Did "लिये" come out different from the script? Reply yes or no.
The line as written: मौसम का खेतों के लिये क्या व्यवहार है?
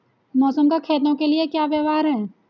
no